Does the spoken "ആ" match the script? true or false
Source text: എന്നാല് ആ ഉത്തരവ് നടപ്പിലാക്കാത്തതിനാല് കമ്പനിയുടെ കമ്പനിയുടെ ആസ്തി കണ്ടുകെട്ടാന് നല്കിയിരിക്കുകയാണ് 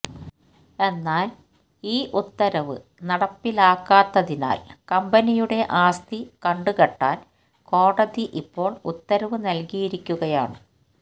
false